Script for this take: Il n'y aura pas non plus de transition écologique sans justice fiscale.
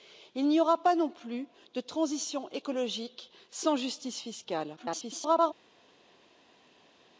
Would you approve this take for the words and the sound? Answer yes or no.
no